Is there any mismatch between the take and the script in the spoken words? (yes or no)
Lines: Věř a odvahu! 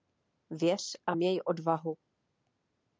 yes